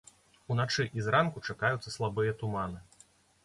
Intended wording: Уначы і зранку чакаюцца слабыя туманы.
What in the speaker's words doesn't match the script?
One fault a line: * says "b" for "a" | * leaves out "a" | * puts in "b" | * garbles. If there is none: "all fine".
all fine